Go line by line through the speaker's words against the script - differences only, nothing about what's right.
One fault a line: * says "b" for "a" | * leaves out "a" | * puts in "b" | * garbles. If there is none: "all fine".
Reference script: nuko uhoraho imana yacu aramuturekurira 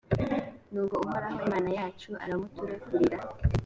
all fine